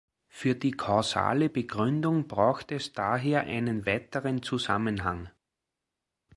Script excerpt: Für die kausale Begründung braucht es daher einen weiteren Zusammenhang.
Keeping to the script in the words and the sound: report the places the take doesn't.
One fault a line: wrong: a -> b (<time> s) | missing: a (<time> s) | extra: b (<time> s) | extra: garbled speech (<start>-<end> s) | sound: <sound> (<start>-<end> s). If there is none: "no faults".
no faults